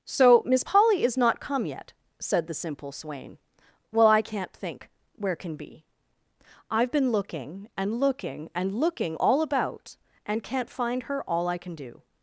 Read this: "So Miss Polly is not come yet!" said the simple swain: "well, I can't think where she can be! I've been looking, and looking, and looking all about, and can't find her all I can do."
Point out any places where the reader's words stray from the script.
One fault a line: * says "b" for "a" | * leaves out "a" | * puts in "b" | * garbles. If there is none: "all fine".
* leaves out "she"